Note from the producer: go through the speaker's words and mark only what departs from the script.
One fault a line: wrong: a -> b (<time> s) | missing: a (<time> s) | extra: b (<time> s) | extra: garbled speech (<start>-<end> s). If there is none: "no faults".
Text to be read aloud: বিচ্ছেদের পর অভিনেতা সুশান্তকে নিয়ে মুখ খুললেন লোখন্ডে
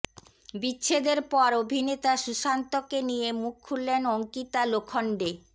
extra: অঙ্কিতা (4.1 s)